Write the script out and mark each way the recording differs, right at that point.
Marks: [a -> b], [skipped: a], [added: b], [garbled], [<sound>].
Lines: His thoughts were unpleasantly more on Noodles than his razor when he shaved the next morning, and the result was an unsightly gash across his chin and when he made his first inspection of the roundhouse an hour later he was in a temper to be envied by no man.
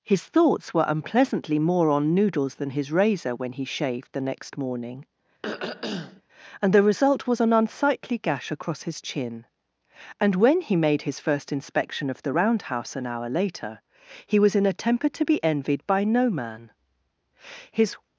His thoughts were unpleasantly more on Noodles than his razor when he shaved the next morning, [throat clearing] and the result was an unsightly gash across his chin and when he made his first inspection of the roundhouse an hour later he was in a temper to be envied by no man. [added: His]